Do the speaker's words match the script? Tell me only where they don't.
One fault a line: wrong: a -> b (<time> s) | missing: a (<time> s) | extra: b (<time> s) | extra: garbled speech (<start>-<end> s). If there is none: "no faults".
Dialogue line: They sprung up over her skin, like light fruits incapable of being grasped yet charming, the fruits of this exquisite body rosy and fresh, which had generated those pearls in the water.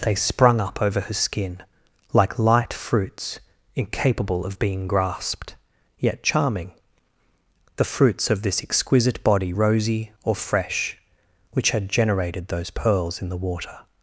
wrong: and -> or (10.2 s)